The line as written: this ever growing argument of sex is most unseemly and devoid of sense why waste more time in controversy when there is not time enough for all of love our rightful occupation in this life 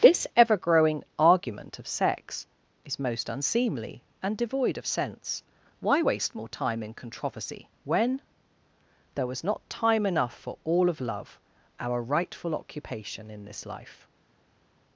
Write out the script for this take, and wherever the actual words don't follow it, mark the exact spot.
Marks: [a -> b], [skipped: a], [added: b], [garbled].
this ever growing argument of sex is most unseemly and devoid of sense why waste more time in controversy when there [is -> was] not time enough for all of love our rightful occupation in this life